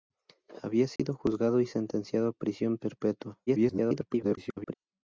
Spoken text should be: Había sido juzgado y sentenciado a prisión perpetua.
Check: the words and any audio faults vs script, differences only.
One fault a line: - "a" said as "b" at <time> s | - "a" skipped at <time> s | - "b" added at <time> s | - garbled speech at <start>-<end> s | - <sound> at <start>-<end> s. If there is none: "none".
- dropout at 1.0-1.0 s
- garbled speech at 3.5-4.7 s